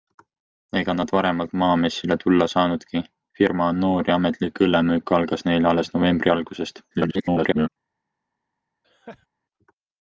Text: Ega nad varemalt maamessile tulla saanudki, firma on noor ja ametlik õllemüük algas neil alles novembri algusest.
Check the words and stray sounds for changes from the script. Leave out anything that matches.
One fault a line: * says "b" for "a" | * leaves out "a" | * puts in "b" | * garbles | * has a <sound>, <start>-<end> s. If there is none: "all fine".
* garbles
* has a laugh, 8.8-9.3 s